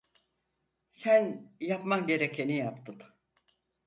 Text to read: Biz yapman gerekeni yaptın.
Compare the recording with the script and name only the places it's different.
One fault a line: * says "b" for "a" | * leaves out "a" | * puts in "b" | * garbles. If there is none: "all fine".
* says "Sen" for "Biz"